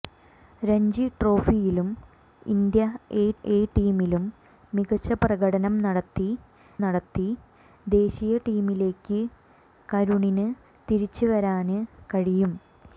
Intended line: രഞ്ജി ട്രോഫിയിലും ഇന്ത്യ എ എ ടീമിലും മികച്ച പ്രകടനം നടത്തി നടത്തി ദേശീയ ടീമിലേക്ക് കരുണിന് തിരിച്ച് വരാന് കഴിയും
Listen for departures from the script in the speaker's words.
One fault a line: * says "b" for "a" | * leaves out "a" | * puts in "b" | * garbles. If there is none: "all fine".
all fine